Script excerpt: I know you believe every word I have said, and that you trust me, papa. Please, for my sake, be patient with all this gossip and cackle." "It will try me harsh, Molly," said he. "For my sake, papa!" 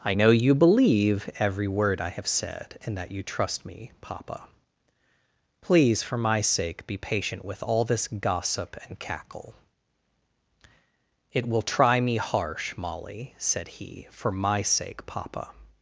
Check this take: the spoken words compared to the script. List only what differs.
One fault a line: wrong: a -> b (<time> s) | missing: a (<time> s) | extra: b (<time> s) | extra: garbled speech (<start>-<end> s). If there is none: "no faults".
no faults